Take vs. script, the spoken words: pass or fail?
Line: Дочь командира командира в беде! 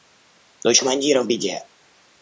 fail